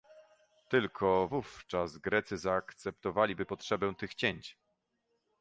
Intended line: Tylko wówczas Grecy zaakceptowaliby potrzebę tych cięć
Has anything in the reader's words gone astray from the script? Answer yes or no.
no